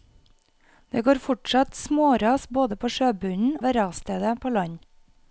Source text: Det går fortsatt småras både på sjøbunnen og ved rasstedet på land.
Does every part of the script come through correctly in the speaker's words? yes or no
no